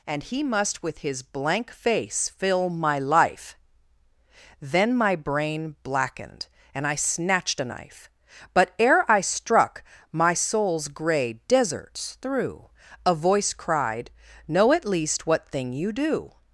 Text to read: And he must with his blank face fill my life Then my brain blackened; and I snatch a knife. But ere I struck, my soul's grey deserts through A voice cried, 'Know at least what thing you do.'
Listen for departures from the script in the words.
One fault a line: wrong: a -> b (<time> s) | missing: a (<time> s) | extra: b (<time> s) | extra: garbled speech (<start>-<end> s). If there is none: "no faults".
wrong: snatch -> snatched (7.0 s)